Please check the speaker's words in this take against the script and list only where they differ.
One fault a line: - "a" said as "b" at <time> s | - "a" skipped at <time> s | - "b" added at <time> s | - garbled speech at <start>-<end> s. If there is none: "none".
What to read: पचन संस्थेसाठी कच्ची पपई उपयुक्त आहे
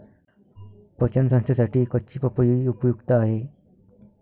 none